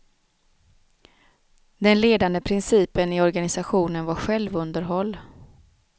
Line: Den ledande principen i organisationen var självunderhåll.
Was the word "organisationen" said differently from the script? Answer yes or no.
no